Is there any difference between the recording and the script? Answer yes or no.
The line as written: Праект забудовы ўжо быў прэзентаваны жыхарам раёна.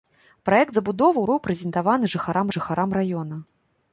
yes